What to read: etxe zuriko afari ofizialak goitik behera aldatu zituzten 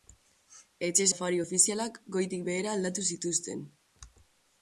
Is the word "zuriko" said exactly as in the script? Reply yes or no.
no